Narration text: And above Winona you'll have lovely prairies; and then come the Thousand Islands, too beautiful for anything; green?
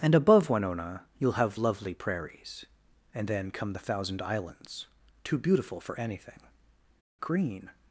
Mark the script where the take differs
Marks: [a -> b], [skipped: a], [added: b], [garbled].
And above Winona you'll have lovely prairies; and then come the Thousand Islands, too beautiful for anything; green?